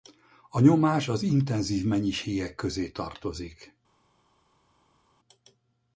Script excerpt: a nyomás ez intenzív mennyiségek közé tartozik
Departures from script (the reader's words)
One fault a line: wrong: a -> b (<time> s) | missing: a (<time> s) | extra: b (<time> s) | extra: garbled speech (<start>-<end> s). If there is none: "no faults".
wrong: ez -> az (1.1 s)